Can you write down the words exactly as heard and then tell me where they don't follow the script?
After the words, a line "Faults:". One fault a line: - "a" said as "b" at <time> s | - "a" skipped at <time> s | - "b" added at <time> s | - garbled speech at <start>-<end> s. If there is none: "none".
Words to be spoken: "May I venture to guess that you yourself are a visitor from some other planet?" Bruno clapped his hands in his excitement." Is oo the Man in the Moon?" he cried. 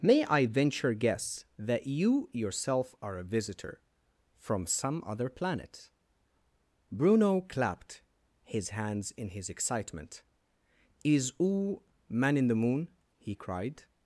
"May I venture guess that you yourself are a visitor from some other planet?" Bruno clapped his hands in his excitement." Is oo Man in the Moon?" he cried.
Faults:
- "to" skipped at 0.9 s
- "the" skipped at 11.8 s